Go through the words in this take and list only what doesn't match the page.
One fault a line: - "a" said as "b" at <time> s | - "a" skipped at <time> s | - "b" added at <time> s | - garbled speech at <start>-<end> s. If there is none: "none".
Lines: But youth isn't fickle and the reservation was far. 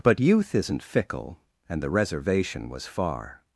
none